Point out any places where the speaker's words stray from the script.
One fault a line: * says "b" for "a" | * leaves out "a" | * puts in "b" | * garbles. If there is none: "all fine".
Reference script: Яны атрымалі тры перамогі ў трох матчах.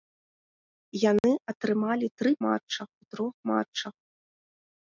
* says "матчах" for "перамогі"